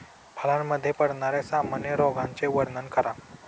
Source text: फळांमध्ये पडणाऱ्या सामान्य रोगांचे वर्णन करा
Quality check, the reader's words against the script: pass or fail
pass